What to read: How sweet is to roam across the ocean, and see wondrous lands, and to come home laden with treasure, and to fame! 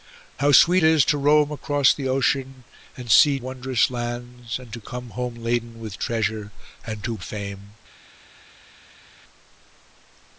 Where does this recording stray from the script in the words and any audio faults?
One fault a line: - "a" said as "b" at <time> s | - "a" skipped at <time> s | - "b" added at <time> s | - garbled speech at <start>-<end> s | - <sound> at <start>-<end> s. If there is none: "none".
none